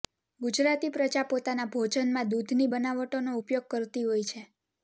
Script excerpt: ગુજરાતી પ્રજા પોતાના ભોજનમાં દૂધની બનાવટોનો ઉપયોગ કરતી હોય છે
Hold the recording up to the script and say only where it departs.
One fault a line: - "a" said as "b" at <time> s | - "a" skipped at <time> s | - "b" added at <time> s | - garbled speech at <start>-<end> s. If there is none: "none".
none